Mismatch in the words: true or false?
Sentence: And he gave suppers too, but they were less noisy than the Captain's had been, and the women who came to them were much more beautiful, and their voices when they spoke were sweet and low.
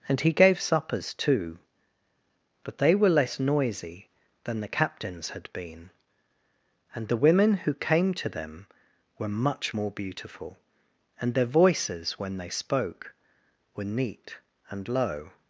true